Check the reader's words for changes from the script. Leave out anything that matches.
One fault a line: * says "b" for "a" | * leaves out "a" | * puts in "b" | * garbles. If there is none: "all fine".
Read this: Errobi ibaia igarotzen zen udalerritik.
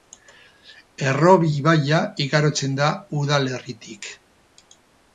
* says "da" for "zen"